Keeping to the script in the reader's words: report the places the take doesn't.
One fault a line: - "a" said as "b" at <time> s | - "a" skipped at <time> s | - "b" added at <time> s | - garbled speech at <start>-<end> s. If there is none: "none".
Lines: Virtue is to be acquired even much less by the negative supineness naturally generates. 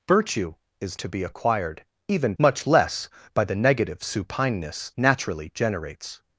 none